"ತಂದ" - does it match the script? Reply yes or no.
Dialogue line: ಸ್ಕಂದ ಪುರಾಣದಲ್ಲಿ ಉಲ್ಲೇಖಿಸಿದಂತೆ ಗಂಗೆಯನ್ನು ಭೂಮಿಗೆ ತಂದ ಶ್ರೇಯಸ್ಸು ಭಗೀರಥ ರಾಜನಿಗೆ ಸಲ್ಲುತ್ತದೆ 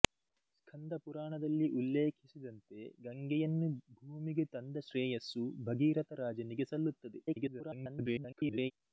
yes